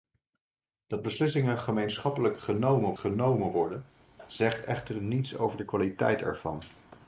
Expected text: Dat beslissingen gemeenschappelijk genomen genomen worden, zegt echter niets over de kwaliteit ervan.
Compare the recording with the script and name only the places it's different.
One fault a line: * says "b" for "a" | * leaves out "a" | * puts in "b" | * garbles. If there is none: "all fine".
all fine